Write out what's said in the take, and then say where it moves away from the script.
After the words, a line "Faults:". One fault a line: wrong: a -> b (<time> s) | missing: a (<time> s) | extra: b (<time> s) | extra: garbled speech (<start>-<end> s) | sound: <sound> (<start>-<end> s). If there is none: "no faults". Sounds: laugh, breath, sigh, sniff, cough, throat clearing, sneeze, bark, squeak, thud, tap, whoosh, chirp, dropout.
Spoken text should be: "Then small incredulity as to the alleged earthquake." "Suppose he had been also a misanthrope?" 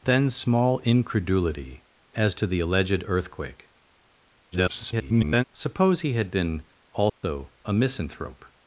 "Then small incredulity as to the alleged earthquake." [garbled] "Suppose he had been also a misanthrope?"
Faults:
extra: garbled speech (4.5-5.4 s)
sound: dropout (7.1-7.2 s)